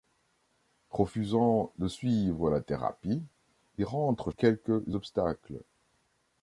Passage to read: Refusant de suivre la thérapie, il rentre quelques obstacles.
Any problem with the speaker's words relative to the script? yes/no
no